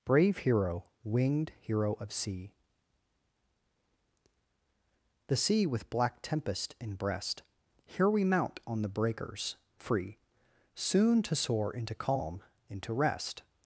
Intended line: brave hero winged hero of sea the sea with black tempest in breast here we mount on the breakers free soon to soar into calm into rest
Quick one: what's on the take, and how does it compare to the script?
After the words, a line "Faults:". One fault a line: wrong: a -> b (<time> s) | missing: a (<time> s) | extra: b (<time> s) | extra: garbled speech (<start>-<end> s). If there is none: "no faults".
brave hero winged hero of sea the sea with black tempest in breast here we mount on the breakers free soon to soar into calm into rest
Faults:
no faults